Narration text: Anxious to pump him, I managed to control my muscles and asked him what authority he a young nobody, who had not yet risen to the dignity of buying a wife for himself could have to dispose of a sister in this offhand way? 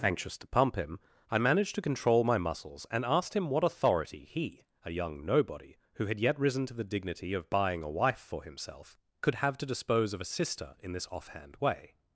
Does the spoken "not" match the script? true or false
false